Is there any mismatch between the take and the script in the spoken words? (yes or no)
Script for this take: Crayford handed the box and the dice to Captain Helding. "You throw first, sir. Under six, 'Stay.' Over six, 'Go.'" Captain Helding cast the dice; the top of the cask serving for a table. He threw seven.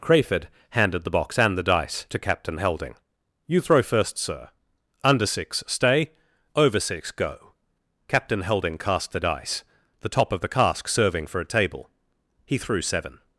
no